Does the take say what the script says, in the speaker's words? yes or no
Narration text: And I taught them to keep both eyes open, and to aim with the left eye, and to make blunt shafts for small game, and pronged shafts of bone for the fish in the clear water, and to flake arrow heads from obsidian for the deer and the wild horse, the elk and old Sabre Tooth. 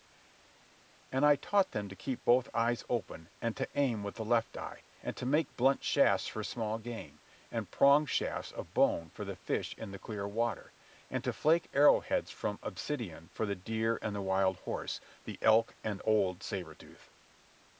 yes